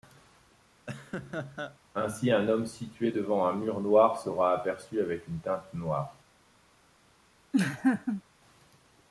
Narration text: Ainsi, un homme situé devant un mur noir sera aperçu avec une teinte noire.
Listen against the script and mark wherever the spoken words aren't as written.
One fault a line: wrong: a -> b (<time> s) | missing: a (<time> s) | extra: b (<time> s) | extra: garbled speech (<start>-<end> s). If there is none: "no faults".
no faults